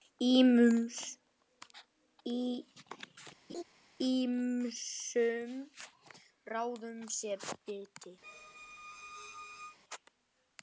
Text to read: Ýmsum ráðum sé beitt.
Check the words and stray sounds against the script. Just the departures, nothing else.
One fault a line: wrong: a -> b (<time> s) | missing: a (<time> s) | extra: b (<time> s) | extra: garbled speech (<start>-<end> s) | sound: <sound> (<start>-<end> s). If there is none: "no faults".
sound: laugh (3.5-3.6 s)
sound: squeak (8.2-9.8 s)